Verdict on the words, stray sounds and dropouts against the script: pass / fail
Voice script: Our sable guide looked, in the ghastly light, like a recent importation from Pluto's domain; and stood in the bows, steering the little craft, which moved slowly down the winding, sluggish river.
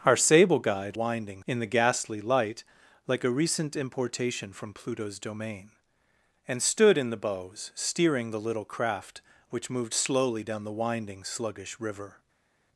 fail